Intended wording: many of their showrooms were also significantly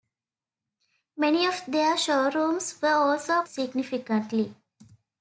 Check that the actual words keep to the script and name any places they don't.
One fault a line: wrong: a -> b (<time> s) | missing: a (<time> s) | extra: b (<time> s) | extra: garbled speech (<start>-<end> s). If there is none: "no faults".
no faults